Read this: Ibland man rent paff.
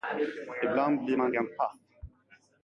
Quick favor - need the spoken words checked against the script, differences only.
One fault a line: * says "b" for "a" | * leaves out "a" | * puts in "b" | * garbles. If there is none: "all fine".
* puts in "blir"